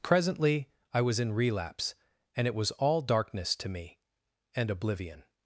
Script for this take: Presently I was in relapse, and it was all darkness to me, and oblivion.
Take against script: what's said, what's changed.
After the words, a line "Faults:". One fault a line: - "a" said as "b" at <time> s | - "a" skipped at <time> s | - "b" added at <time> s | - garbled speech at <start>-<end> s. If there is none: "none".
Presently I was in relapse, and it was all darkness to me, and oblivion.
Faults:
none